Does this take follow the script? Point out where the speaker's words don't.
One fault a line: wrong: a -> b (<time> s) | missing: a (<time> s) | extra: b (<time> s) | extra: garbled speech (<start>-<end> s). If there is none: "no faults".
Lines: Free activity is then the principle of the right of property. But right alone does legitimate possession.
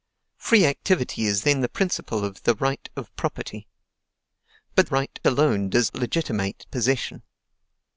no faults